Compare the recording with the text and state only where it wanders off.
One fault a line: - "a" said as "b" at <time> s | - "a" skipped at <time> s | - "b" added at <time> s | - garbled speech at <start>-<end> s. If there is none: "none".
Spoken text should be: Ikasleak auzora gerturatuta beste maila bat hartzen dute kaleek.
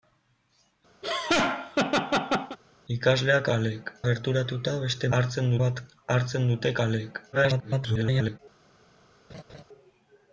- "auzora" said as "kaleek" at 3.5 s
- "maila" said as "hartzen" at 5.2 s
- garbled speech at 7.3-8.4 s